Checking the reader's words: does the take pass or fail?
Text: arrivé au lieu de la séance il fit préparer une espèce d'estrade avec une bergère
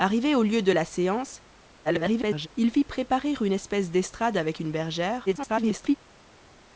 fail